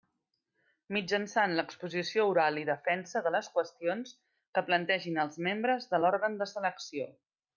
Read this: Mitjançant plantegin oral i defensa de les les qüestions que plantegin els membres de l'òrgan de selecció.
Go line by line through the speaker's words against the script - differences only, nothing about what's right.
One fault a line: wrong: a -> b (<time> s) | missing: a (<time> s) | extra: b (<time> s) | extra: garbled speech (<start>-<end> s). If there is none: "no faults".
wrong: plantegin -> l'exposició (1.6 s)
missing: les (3.5 s)